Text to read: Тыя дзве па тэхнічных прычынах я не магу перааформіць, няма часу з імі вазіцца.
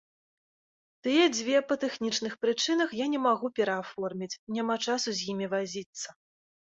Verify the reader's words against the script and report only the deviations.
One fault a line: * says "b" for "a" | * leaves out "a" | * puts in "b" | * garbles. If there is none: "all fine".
all fine